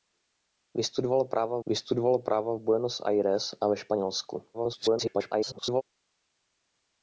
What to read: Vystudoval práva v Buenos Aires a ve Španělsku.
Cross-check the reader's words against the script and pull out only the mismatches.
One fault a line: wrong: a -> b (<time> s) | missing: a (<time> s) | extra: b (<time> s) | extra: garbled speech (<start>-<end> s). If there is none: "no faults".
extra: vystudoval práva (1.6 s)
extra: garbled speech (4.5-5.8 s)